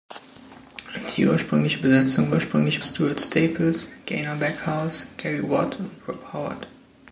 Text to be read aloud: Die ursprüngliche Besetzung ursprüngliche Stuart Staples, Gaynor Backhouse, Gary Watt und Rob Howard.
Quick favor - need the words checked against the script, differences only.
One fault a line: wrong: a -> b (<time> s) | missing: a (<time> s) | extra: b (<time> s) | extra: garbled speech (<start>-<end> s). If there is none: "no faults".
no faults